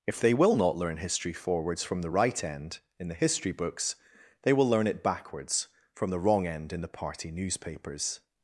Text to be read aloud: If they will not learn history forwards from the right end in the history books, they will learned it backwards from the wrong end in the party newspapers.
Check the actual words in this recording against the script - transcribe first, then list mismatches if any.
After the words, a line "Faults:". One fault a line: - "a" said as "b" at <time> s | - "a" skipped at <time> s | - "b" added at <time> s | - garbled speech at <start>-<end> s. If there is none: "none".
If they will not learn history forwards from the right end in the history books, they will learn it backwards from the wrong end in the party newspapers.
Faults:
- "learned" said as "learn" at 4.7 s